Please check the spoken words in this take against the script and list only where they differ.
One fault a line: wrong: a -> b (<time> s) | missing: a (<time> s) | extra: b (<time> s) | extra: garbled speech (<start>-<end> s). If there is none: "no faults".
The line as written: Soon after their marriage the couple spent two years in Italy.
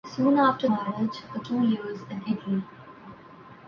missing: their (0.7 s)
missing: couple spent (1.4 s)